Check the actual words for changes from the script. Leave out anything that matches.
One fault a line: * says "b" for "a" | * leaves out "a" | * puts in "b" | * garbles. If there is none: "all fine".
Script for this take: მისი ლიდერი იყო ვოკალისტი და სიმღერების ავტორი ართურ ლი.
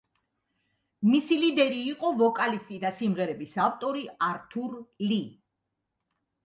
all fine